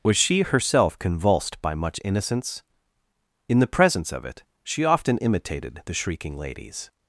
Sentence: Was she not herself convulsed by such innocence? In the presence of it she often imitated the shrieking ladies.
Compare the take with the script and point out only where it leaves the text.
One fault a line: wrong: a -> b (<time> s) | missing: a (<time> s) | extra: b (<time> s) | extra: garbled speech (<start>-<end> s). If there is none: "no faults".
missing: not (0.4 s)
wrong: such -> much (1.7 s)